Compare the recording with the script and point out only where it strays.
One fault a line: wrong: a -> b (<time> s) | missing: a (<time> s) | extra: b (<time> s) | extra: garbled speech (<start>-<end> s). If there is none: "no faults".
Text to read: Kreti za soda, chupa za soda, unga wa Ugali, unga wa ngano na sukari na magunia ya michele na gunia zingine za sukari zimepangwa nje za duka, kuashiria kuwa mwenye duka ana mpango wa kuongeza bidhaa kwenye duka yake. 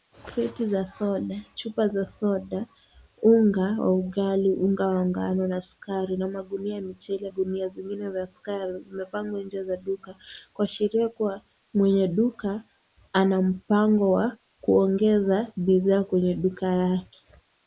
missing: na (7.3 s)